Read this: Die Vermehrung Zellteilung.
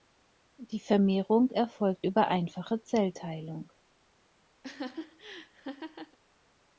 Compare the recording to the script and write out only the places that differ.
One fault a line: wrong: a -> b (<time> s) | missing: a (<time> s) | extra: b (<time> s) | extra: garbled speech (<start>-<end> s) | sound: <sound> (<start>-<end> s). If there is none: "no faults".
extra: erfolgt über einfache (1.5 s)
sound: laugh (4.6-6.2 s)